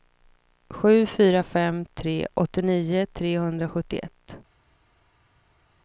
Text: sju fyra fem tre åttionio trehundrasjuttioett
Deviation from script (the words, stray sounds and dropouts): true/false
false